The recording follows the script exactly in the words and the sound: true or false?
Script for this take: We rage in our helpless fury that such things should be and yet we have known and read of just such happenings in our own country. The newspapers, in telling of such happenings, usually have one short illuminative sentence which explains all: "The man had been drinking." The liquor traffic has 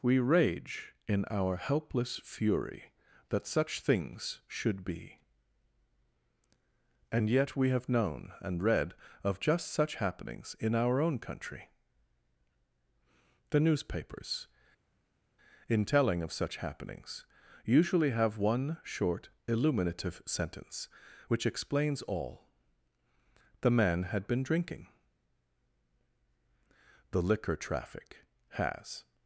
true